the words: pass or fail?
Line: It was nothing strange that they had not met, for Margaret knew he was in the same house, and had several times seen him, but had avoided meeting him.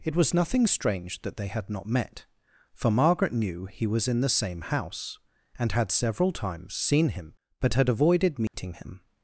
pass